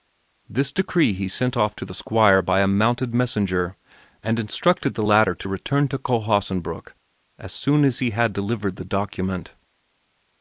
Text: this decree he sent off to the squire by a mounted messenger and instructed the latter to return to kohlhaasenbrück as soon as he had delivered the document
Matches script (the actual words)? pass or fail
pass